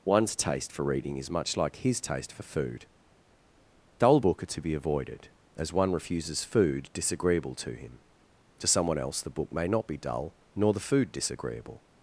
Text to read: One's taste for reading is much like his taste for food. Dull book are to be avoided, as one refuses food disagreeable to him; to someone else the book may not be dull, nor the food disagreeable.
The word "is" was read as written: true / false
true